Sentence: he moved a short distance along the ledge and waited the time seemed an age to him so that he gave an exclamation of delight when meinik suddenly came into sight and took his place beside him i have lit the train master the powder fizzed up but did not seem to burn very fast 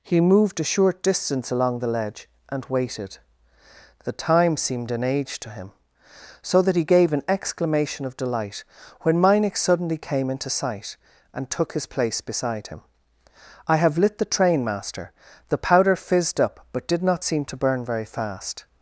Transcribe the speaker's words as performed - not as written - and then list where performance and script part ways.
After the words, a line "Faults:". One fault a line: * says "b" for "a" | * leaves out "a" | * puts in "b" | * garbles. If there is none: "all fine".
he moved a short distance along the ledge and waited the time seemed an age to him so that he gave an exclamation of delight when meinik suddenly came into sight and took his place beside him i have lit the train master the powder fizzed up but did not seem to burn very fast
Faults:
all fine